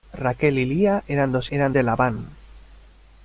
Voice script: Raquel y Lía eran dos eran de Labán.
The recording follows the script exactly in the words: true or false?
true